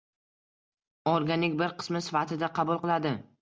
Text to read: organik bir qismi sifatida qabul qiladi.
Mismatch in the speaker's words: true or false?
false